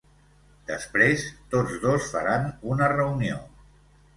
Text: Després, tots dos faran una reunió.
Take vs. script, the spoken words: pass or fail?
pass